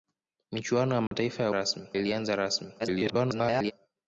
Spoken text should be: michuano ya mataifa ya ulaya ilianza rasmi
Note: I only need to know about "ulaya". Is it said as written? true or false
false